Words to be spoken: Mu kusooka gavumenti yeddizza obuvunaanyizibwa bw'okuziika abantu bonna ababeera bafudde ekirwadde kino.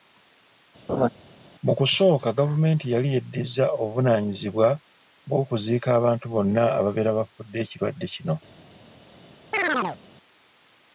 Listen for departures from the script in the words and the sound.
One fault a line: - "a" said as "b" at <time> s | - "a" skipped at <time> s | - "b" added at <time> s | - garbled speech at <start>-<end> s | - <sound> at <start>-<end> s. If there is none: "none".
- laugh at 0.9-1.1 s
- "yali" added at 2.9 s
- chirp at 9.5-10.0 s